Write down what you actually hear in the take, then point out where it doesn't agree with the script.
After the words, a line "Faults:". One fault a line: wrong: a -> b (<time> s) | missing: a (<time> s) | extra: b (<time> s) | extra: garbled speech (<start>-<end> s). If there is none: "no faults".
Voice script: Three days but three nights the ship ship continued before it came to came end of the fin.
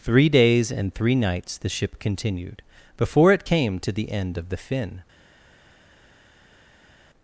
Three days and three nights the ship continued before it came to the end of the fin.
Faults:
wrong: but -> and (0.7 s)
missing: ship (2.0 s)
wrong: came -> the (3.9 s)